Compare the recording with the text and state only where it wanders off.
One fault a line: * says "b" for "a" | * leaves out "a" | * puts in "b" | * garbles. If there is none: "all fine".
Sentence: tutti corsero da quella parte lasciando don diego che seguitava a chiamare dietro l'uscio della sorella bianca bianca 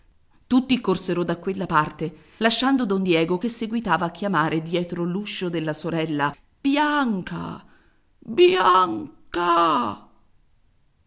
all fine